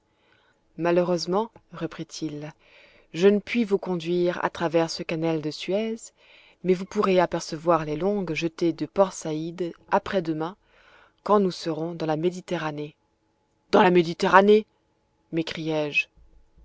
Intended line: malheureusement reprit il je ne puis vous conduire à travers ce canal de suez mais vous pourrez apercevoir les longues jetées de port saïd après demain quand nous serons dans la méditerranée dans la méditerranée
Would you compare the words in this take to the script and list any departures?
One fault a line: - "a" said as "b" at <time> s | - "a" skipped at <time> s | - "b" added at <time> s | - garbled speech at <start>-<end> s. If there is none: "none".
none